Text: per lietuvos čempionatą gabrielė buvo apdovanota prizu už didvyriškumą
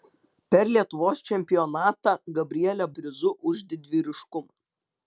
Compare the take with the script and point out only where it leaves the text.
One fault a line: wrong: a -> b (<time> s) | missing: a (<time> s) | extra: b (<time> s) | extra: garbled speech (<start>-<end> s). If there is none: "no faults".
missing: buvo apdovanota (2.9 s)